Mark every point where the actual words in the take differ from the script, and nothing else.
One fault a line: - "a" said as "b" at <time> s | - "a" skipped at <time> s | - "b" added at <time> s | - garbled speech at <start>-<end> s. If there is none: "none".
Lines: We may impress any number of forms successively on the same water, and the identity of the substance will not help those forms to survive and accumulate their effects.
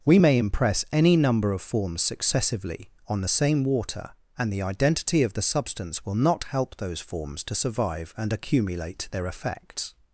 none